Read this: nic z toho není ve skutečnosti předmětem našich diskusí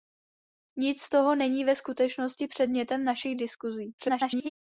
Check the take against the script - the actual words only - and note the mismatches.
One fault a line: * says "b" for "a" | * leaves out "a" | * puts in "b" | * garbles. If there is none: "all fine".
* garbles